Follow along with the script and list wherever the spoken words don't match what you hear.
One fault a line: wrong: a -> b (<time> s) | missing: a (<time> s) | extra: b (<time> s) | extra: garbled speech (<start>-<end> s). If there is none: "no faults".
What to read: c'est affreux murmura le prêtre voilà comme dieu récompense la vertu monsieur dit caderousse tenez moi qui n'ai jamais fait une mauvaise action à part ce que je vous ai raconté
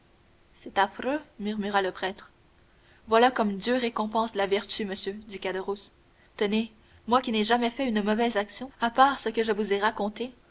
no faults